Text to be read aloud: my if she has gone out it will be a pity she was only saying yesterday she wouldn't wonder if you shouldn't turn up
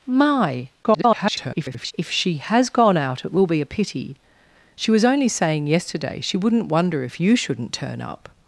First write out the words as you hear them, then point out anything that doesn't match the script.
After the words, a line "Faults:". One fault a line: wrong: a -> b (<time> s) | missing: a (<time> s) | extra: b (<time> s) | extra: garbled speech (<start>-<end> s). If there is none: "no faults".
my [garbled] if she has gone out it will be a pity she was only saying yesterday she wouldn't wonder if you shouldn't turn up
Faults:
extra: garbled speech (0.8-1.9 s)